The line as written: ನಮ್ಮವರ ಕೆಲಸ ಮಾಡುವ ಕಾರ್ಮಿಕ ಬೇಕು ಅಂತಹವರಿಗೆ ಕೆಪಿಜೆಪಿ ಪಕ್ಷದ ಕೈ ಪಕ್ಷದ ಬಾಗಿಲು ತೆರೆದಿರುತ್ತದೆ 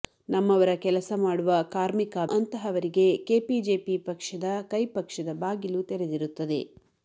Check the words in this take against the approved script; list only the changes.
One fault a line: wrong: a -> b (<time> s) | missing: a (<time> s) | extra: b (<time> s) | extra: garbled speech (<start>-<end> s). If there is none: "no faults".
missing: ಬೇಕು (2.2 s)